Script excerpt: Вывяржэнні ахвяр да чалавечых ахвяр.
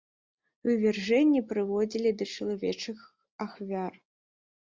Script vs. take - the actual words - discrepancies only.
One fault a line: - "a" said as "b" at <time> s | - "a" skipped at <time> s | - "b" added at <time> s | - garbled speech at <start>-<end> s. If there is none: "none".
- "ахвяр" said as "прыводзілі" at 1.5 s